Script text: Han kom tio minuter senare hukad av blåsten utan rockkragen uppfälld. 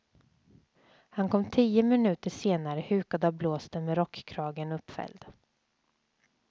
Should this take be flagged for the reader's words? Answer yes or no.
yes